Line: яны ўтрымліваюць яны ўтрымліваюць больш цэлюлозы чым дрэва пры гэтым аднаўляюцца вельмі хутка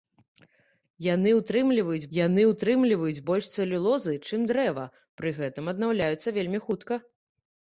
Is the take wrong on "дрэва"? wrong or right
right